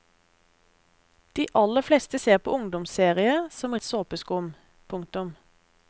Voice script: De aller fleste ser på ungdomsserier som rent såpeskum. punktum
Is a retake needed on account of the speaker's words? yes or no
yes